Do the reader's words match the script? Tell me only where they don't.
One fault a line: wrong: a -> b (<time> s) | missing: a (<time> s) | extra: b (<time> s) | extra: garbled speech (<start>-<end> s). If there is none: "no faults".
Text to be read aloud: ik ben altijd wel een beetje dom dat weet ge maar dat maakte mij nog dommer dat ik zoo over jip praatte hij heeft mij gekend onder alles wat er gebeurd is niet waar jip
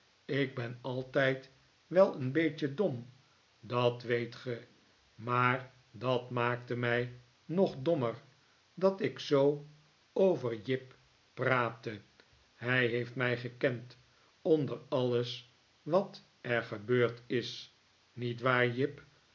no faults